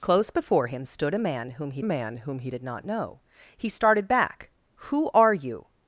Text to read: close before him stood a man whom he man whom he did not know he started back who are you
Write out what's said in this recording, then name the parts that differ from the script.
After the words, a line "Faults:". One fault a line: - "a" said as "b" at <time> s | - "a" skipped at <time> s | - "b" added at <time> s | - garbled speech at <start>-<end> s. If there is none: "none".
close before him stood a man whom he man whom he did not know he started back who are you
Faults:
none